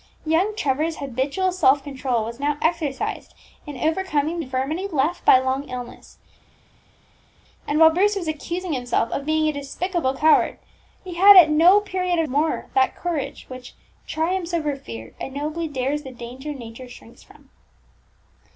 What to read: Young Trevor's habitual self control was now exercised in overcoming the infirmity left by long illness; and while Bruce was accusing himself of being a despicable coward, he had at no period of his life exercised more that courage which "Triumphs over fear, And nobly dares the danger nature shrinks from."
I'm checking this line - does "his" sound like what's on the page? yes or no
no